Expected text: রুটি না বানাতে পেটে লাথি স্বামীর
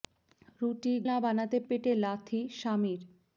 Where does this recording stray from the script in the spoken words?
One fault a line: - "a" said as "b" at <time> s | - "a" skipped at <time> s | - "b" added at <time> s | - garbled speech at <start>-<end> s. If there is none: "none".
none